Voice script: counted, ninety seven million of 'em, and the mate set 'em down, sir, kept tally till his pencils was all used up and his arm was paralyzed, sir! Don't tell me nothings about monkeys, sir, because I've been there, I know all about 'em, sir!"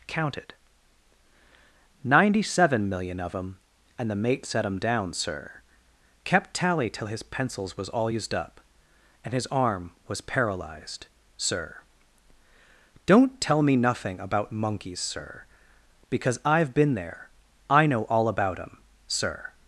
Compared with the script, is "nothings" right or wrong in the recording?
wrong